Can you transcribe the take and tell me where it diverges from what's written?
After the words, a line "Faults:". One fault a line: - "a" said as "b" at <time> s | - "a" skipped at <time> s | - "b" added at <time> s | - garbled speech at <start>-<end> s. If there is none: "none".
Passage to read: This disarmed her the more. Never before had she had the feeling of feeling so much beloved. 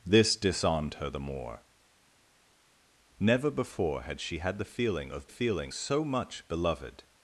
This disarmed her the more. Never before had she had the feeling of feeling so much beloved.
Faults:
none